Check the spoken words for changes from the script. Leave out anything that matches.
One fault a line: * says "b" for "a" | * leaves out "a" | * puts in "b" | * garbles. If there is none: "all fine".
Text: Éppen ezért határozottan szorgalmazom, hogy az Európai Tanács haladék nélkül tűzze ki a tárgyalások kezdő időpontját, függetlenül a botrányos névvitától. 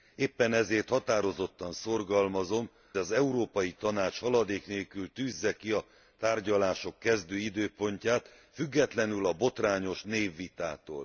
* leaves out "hogy"